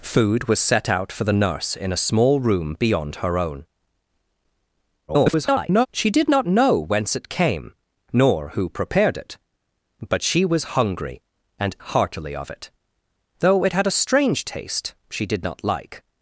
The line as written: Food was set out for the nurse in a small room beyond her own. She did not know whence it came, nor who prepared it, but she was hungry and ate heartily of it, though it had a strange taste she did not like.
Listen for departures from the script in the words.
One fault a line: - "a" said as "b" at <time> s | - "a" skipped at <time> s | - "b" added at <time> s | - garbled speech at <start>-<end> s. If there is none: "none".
- garbled speech at 5.1-5.9 s
- "ate" skipped at 11.8 s